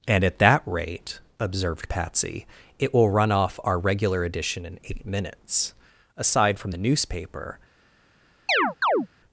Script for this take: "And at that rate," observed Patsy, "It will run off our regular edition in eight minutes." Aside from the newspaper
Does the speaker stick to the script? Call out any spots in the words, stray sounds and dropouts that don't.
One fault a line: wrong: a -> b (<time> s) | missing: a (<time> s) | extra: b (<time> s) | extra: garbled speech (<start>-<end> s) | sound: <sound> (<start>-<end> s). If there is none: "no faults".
sound: chirp (8.5-9.1 s)